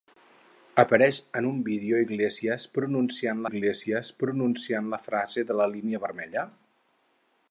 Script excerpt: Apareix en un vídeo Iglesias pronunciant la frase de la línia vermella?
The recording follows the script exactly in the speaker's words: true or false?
false